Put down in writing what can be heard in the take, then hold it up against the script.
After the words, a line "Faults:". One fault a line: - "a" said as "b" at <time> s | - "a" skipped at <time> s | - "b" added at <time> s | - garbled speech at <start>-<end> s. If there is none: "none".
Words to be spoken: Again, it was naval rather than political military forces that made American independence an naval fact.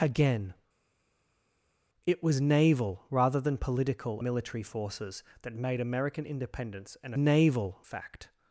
Again, it was naval rather than political military forces that made American independence an naval fact.
Faults:
none